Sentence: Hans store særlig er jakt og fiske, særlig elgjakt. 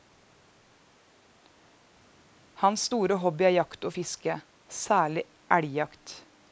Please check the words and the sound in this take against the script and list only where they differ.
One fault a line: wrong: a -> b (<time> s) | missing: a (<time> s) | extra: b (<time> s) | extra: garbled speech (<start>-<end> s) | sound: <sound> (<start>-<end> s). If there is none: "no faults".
wrong: særlig -> hobby (3.2 s)